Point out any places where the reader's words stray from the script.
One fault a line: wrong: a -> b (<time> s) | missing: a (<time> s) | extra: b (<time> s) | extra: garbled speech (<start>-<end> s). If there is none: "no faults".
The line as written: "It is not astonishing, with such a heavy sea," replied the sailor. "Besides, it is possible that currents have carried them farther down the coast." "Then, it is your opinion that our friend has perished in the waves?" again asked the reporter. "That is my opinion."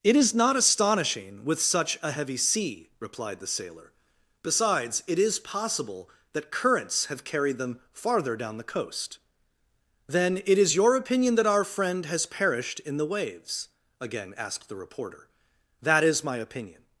no faults